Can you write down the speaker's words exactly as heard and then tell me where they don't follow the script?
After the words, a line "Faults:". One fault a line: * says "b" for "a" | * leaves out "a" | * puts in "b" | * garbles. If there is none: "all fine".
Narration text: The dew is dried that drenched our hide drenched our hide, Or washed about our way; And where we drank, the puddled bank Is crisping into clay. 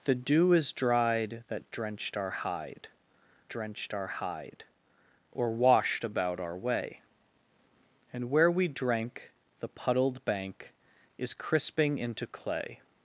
The dew is dried that drenched our hide drenched our hide, Or washed about our way; And where we drank, the puddled bank Is crisping into clay.
Faults:
all fine